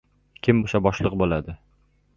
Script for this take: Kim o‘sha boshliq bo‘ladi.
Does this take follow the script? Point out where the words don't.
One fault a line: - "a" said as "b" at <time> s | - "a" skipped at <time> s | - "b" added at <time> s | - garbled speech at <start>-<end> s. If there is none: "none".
none